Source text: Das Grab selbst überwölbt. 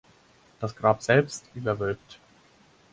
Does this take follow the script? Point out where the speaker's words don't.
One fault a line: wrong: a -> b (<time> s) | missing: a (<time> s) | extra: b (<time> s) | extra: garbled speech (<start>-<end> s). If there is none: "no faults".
no faults